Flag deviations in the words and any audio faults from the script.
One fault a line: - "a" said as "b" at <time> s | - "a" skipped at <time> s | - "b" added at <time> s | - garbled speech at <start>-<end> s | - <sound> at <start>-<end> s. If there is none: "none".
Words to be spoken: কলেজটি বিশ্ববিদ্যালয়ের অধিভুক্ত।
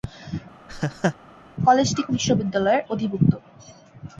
- laugh at 0.7-1.2 s